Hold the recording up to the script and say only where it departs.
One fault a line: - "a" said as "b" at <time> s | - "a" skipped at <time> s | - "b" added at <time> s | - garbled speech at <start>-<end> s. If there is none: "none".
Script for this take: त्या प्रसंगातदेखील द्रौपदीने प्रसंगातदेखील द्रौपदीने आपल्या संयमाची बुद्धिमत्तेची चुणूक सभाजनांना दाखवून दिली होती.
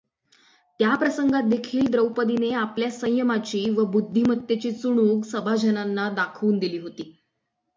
- "प्रसंगातदेखील द्रौपदीने" skipped at 2.5 s
- "व" added at 3.7 s